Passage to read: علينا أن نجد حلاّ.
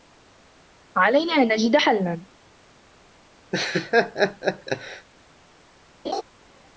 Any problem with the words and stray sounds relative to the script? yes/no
yes